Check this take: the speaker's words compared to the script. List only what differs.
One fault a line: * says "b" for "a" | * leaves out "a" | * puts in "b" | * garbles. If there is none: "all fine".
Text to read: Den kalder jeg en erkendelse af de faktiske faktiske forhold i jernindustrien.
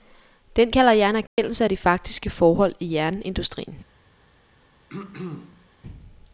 * leaves out "faktiske"